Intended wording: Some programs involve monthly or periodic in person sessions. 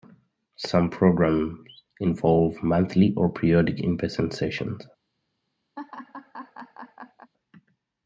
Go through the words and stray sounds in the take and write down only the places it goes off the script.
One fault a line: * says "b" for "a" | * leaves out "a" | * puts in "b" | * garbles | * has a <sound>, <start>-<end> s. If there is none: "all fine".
* has a laugh, 5.8-7.3 s